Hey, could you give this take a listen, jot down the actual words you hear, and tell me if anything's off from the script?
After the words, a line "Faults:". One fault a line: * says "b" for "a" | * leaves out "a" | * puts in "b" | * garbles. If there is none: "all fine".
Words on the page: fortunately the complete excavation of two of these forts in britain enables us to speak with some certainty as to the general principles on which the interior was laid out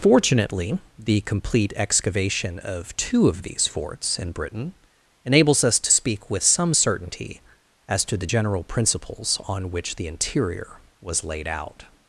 fortunately the complete excavation of two of these forts in britain enables us to speak with some certainty as to the general principles on which the interior was laid out
Faults:
all fine